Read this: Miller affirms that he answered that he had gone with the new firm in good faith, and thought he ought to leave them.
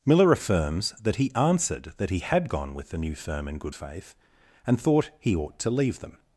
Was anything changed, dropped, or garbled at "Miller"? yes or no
no